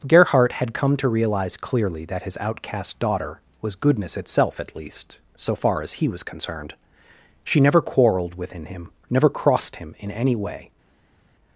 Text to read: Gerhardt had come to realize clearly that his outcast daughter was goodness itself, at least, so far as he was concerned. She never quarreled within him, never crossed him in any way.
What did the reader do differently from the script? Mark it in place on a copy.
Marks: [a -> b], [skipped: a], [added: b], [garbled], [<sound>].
Gerhardt had come to realize clearly that his outcast daughter was goodness itself, at least, so far as he was concerned. She never quarreled within him, never crossed him in any way.